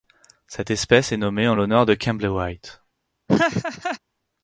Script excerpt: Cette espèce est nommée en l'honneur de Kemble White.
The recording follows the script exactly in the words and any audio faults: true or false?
false